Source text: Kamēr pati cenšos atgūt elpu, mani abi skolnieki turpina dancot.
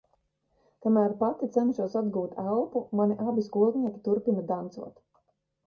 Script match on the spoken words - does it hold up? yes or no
yes